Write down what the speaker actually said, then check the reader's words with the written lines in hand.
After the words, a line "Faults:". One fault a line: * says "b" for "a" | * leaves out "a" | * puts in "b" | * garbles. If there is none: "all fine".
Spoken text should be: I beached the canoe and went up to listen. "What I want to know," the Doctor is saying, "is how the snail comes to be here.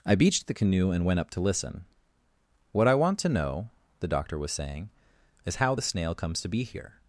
I beached the canoe and went up to listen. "What I want to know," the Doctor was saying, "is how the snail comes to be here.
Faults:
* says "was" for "is"